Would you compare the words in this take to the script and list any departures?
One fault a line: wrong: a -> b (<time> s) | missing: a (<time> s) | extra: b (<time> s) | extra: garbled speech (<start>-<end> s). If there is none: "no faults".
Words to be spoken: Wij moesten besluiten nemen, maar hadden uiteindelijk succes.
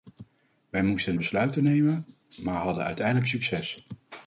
no faults